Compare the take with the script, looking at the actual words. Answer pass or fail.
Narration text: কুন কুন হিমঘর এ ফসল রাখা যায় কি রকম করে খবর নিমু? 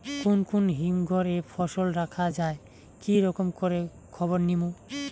pass